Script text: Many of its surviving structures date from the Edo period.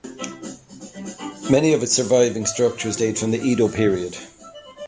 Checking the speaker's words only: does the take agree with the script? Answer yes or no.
yes